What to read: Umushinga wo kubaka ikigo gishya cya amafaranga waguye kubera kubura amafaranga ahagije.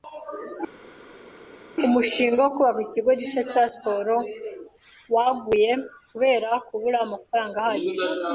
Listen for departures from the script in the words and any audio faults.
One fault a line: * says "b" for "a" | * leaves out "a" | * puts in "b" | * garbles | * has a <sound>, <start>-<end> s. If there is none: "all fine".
* says "siporo" for "amafaranga"